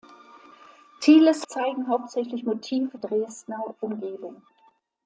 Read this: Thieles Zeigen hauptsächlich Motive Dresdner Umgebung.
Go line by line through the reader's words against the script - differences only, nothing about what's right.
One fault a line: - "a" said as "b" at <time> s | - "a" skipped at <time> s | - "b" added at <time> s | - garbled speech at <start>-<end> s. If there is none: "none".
none